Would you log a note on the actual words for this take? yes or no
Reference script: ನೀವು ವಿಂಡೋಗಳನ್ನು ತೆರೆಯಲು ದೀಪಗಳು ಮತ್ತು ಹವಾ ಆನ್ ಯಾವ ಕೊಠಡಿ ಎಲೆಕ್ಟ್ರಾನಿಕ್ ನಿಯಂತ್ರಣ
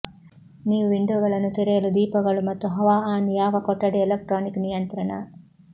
no